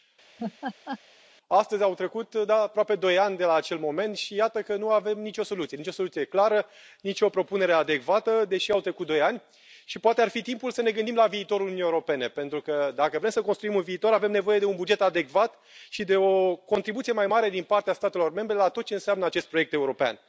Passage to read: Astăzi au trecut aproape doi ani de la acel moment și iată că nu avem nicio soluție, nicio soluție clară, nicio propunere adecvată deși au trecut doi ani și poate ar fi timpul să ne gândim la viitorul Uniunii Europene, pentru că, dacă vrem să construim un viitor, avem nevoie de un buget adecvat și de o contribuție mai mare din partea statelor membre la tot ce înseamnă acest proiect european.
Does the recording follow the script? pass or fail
pass